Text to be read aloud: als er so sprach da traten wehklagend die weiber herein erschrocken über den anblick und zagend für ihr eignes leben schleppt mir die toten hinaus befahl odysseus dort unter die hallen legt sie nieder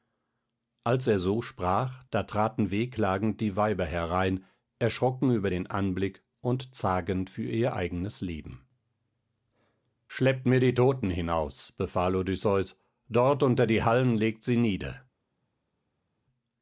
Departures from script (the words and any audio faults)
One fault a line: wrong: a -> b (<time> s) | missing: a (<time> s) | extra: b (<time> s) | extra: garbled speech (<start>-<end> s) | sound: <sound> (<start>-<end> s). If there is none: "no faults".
no faults